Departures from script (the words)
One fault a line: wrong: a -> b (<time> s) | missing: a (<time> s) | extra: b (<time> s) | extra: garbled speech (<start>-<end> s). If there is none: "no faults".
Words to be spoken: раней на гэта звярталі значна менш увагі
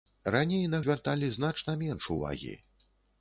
missing: гэта (0.8 s)